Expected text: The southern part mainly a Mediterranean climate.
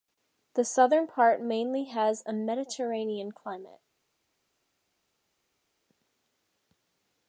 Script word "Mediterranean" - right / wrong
right